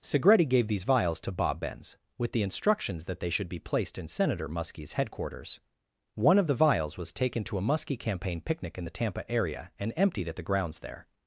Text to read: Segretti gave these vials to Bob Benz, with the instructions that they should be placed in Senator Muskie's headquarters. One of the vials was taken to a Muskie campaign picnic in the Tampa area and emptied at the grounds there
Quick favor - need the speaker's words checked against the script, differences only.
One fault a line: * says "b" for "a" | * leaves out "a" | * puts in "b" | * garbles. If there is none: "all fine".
all fine